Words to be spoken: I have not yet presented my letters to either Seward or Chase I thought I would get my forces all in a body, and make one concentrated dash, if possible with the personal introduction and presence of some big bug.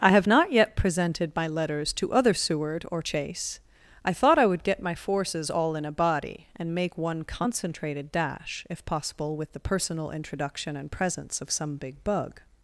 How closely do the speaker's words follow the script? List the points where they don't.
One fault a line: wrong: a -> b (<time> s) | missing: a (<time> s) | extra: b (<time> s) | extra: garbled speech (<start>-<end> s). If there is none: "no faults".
wrong: either -> other (2.1 s)